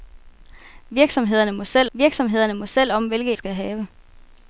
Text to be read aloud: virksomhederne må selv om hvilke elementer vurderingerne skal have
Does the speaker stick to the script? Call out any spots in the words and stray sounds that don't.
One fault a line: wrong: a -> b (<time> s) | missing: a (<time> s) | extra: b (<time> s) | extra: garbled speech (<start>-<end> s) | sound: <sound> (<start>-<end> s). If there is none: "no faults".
extra: virksomhederne må selv (1.9 s)
missing: elementer vurderingerne (3.3 s)